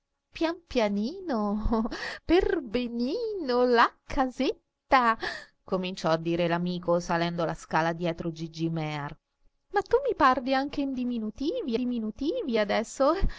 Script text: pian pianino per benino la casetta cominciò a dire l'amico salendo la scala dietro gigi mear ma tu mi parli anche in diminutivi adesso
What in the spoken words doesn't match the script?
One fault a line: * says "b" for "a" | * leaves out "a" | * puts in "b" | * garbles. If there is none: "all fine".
* puts in "diminutivi"